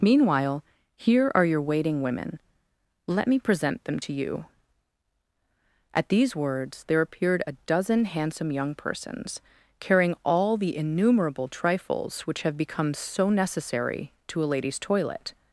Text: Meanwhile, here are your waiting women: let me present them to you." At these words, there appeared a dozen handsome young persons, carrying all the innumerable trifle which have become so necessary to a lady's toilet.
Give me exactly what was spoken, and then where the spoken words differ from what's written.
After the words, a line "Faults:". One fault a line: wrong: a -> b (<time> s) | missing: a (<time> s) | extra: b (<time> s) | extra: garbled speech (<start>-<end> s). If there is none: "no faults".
Meanwhile, here are your waiting women: let me present them to you." At these words, there appeared a dozen handsome young persons, carrying all the innumerable trifles which have become so necessary to a lady's toilet.
Faults:
wrong: trifle -> trifles (11.5 s)